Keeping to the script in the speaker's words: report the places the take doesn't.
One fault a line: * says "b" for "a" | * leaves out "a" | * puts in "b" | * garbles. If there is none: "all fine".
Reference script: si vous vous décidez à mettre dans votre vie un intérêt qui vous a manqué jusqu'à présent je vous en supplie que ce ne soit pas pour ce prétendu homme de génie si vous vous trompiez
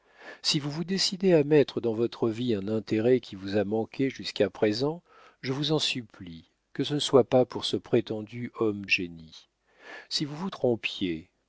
* leaves out "de"